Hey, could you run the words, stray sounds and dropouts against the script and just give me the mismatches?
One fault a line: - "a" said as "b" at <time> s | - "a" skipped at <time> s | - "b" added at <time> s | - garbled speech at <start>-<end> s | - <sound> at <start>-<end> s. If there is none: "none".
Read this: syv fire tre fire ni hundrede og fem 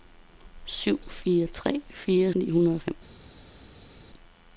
none